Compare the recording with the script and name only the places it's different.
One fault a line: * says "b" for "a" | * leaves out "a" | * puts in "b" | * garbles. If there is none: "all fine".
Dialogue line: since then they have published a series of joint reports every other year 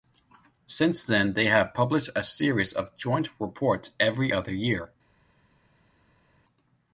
all fine